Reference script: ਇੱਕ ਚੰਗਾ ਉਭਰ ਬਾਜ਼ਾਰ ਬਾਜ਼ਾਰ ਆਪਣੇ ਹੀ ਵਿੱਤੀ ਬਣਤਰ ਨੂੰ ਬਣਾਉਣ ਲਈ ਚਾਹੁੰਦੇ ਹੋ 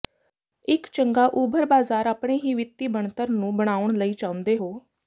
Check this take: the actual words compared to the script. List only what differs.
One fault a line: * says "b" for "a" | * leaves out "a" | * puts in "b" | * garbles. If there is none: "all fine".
* leaves out "ਬਾਜ਼ਾਰ"